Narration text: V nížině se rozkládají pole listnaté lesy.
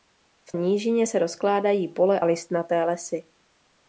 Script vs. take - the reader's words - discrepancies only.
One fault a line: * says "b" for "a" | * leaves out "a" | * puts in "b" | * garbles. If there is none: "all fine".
all fine